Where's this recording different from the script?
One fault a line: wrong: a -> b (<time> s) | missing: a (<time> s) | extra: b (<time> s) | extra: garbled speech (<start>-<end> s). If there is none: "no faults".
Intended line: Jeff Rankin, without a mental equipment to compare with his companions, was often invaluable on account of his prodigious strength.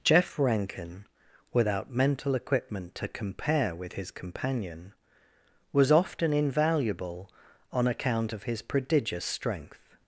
missing: a (1.9 s)
wrong: companions -> companion (4.1 s)